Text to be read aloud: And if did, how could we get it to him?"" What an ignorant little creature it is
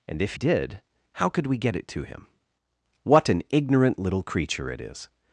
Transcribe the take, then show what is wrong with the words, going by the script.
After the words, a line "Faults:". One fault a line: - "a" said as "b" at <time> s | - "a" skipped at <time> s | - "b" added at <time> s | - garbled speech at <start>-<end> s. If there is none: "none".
And if did, how could we get it to him?"" What an ignorant little creature it is
Faults:
none